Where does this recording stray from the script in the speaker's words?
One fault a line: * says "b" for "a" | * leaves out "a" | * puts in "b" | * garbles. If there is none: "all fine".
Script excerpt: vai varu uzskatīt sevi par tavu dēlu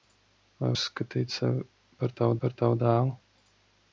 * leaves out "varu"
* puts in "par tavu"